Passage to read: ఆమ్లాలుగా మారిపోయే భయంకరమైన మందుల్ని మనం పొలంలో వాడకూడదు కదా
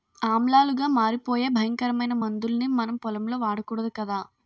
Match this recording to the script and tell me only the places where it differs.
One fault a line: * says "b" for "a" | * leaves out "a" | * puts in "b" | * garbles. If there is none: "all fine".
all fine